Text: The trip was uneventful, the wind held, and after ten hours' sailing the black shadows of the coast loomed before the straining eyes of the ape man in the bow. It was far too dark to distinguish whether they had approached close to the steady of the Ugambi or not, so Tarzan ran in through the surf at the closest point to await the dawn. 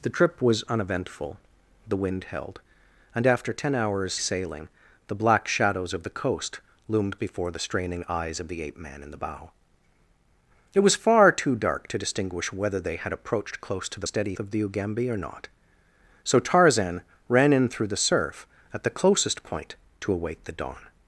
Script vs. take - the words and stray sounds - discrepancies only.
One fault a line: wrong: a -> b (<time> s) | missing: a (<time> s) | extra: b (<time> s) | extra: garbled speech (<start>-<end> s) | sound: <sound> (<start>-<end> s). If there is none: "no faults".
no faults